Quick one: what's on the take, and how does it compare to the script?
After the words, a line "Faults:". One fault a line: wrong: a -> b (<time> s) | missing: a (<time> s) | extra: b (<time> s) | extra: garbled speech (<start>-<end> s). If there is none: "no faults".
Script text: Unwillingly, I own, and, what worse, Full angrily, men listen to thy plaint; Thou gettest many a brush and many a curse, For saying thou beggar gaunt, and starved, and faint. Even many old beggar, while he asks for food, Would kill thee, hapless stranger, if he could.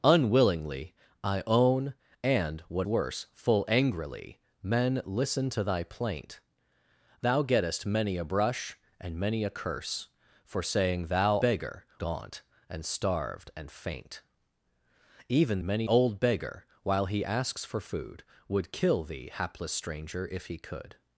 Unwillingly, I own, and, what worse, Full angrily, men listen to thy plaint; Thou gettest many a brush and many a curse, For saying thou beggar gaunt, and starved, and faint. Even many old beggar, while he asks for food, Would kill thee, hapless stranger, if he could.
Faults:
no faults